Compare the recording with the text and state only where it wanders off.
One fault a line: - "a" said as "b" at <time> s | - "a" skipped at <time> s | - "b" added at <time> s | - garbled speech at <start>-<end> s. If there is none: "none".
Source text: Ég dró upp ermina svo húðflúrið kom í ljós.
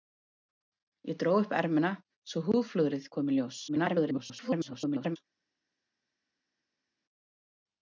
- garbled speech at 3.7-5.2 s